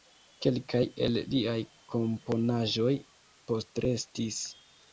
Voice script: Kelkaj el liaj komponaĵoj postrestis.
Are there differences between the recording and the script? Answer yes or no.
no